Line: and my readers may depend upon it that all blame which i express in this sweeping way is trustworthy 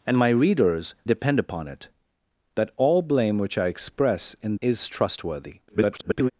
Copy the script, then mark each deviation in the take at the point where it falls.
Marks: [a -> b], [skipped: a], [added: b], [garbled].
and my readers [skipped: may] depend upon it that all blame which i express in [skipped: this sweeping way] is trustworthy [garbled]